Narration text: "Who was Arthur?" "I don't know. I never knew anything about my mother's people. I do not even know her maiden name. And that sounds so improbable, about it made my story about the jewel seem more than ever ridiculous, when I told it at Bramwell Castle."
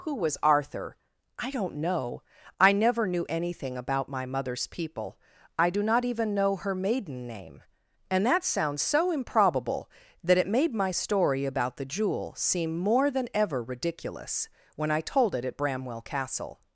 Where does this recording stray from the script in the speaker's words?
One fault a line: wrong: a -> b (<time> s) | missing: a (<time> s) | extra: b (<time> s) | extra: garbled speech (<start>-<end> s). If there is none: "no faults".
wrong: about -> that (10.2 s)